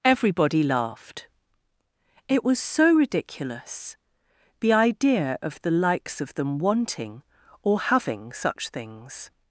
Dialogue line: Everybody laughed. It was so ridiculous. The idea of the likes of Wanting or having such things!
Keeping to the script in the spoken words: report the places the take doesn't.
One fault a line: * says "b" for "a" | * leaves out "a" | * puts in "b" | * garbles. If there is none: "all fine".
* puts in "THEM"